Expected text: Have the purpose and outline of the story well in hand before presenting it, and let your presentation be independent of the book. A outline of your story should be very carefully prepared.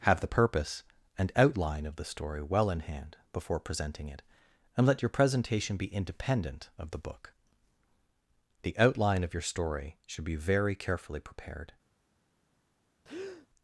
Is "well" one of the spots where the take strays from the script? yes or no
no